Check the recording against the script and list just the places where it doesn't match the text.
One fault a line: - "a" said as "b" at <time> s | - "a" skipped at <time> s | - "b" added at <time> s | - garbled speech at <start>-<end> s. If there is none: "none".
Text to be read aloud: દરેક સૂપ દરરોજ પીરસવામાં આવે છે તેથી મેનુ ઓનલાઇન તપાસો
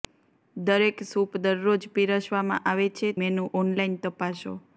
- "તેથી" skipped at 3.1 s